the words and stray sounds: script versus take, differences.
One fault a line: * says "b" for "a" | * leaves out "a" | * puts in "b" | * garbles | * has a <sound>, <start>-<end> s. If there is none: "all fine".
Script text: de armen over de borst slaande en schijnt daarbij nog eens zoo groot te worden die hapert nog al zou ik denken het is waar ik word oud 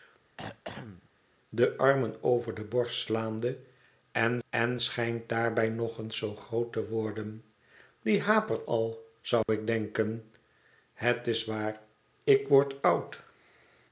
* has a throat clearing, 0.4-1.1 s
* puts in "en"
* leaves out "nog"
* has a dropout, 9.4-9.5 s